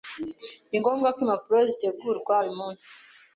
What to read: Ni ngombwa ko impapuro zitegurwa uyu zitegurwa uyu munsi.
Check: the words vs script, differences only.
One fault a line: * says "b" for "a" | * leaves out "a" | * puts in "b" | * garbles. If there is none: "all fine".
* leaves out "zitegurwa uyu"